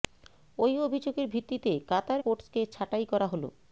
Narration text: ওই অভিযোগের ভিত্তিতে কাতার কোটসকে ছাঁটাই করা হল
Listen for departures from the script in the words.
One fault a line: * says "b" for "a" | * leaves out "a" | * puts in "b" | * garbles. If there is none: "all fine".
all fine